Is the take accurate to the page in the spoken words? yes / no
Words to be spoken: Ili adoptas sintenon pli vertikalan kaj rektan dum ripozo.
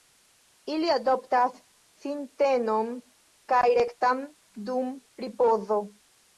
no